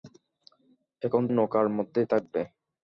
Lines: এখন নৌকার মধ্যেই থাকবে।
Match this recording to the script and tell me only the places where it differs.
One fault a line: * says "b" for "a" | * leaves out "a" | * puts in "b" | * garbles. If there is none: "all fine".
all fine